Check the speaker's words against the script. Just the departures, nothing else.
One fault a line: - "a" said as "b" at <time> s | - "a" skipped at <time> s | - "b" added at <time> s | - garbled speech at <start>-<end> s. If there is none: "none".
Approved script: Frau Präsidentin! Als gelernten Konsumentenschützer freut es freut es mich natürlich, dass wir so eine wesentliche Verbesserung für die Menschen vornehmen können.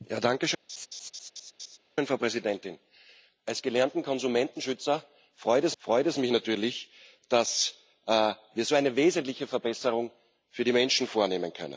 none